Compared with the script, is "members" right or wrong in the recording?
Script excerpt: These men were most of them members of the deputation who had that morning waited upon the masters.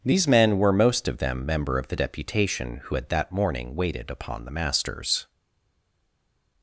wrong